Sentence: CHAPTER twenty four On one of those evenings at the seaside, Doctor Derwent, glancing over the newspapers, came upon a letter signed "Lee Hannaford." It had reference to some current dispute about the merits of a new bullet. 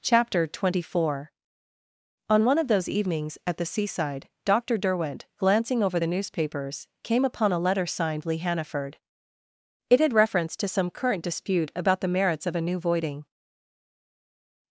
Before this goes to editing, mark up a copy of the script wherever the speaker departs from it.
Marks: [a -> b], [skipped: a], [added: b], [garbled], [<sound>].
CHAPTER twenty four On one of those evenings at the seaside, Doctor Derwent, glancing over the newspapers, came upon a letter signed "Lee Hannaford." It had reference to some current dispute about the merits of a new [bullet. -> voiding]